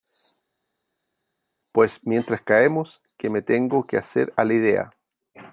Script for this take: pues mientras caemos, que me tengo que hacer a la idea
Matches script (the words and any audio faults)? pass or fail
pass